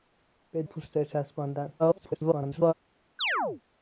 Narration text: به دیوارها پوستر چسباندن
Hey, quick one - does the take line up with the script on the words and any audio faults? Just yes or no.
no